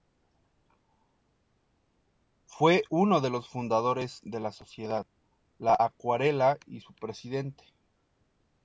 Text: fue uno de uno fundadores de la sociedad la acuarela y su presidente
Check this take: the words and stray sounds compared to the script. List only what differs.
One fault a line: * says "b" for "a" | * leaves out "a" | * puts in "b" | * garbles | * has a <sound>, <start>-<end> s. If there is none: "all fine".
* says "los" for "uno"